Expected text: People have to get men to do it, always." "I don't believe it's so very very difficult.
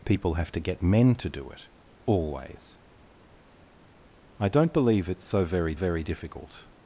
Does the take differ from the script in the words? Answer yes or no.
no